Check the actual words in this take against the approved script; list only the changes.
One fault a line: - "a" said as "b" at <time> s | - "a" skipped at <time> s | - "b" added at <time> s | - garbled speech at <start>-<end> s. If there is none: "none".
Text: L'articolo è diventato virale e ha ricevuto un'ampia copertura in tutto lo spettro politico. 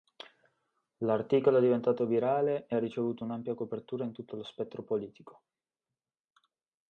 none